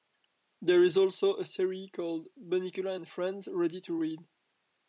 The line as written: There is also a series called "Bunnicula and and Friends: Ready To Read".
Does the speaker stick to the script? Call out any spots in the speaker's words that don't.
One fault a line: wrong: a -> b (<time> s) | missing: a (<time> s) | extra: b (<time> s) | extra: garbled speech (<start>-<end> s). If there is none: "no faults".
missing: and (3.1 s)